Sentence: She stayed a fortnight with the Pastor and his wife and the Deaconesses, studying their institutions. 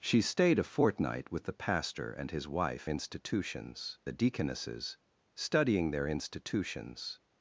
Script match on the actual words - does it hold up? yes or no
no